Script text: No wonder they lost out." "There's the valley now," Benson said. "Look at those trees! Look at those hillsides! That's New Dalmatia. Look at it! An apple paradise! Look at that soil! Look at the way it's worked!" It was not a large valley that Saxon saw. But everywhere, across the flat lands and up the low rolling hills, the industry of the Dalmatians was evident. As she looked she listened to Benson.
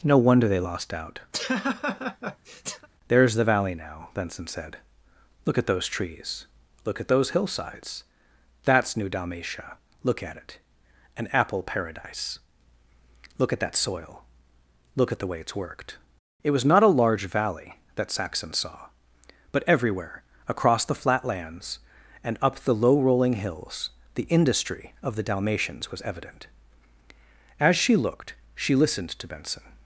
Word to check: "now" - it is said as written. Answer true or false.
true